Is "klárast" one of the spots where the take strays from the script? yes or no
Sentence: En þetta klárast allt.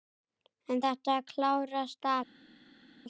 no